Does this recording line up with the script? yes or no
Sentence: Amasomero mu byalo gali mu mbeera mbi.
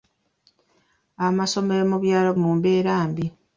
no